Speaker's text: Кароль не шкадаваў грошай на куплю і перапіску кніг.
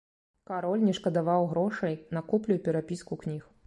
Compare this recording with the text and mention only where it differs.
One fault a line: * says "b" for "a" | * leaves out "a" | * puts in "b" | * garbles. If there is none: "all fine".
all fine